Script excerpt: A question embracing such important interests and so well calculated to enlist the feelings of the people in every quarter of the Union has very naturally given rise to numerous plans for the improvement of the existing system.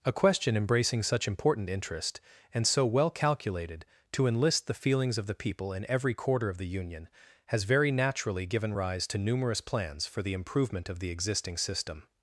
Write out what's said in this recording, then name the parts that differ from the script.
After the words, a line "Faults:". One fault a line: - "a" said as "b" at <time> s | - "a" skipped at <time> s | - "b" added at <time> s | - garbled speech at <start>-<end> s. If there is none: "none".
A question embracing such important interest and so well calculated to enlist the feelings of the people in every quarter of the Union has very naturally given rise to numerous plans for the improvement of the existing system.
Faults:
- "interests" said as "interest" at 1.7 s